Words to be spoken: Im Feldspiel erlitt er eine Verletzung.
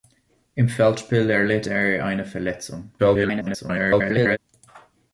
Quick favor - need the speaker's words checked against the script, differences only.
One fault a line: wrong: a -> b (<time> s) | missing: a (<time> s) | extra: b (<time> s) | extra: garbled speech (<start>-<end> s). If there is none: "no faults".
extra: garbled speech (3.0-4.4 s)